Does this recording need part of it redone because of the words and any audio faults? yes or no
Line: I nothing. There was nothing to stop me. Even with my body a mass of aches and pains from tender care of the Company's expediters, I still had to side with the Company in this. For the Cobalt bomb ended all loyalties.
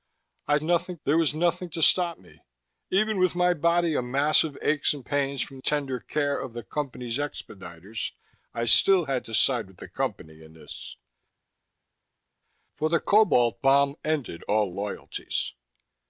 no